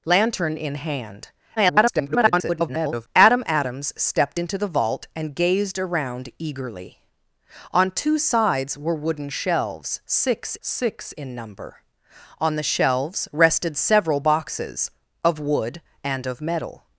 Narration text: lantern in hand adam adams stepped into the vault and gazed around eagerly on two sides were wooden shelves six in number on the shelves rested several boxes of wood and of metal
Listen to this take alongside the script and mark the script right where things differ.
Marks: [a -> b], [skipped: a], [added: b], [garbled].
lantern in hand [garbled] adam adams stepped into the vault and gazed around eagerly on two sides were wooden shelves six [added: six] in number on the shelves rested several boxes of wood and of metal